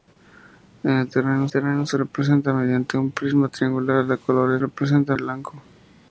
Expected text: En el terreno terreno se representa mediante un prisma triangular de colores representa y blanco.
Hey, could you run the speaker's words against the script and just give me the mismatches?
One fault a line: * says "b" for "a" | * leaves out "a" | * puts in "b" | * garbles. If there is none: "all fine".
all fine